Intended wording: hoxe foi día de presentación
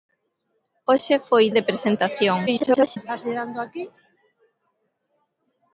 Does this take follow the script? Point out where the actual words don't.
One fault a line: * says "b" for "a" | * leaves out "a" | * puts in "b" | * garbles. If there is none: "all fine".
* leaves out "día"
* garbles